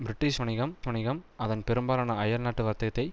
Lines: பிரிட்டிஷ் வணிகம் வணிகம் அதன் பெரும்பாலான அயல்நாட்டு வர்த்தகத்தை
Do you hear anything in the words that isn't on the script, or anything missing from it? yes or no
no